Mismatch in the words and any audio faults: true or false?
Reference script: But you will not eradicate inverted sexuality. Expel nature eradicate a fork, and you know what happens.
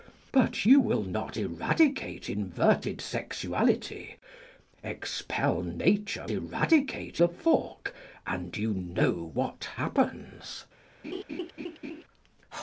true